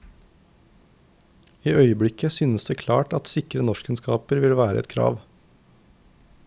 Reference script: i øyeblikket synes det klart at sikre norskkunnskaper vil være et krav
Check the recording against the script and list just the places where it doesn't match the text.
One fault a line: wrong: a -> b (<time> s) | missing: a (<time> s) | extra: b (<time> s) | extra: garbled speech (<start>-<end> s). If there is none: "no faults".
no faults